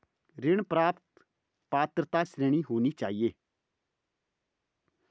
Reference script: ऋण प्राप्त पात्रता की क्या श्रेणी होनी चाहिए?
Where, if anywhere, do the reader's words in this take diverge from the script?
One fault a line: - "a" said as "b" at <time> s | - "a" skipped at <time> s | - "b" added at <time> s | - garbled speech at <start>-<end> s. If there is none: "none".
- "की क्या" skipped at 2.2 s